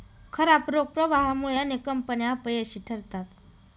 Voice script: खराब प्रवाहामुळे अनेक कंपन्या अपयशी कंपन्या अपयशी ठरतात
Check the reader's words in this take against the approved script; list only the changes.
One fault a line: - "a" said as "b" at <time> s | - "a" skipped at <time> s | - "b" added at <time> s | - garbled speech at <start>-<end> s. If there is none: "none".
- "रोख" added at 0.7 s
- "कंपन्या अपयशी" skipped at 2.8 s